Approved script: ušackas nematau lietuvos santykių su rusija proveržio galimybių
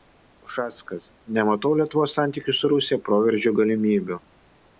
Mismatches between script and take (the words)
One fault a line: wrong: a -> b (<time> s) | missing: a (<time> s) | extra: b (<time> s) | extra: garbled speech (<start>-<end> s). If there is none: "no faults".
no faults